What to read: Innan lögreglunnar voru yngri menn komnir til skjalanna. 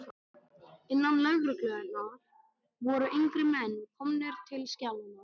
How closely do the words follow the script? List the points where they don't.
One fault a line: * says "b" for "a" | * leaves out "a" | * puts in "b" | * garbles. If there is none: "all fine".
all fine